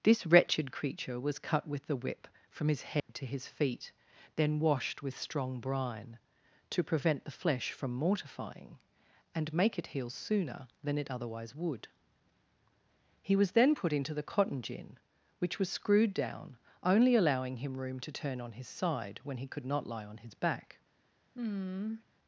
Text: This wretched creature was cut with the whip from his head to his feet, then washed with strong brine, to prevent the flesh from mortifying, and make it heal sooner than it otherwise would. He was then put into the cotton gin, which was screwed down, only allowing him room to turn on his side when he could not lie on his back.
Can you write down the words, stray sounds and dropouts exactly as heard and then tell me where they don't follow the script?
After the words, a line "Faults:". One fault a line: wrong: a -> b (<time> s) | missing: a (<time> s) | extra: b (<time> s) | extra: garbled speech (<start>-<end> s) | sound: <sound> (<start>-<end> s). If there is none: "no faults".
This wretched creature was cut with the whip from his head to his feet, then washed with strong brine, to prevent the flesh from mortifying, and make it heal sooner than it otherwise would. He was then put into the cotton gin, which was screwed down, only allowing him room to turn on his side when he could not lie on his back.
Faults:
sound: dropout (3.0-3.1 s)
sound: sigh (21.3-22.0 s)